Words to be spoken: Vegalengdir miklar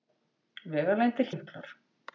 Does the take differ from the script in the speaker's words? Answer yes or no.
no